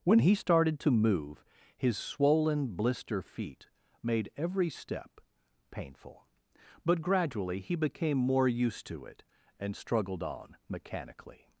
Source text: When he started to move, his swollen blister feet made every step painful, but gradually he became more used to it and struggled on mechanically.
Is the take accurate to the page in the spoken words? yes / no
yes